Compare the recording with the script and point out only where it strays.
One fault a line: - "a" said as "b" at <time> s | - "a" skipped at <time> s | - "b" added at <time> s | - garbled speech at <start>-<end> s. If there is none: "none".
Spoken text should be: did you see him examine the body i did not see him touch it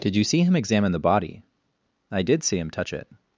- "not" skipped at 2.4 s